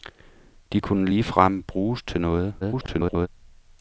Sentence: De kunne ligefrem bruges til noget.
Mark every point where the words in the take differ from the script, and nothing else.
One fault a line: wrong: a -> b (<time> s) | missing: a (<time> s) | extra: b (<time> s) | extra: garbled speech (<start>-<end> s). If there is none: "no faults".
extra: garbled speech (2.6-3.3 s)